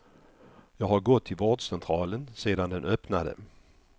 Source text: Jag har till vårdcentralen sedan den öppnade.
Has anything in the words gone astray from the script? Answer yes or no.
yes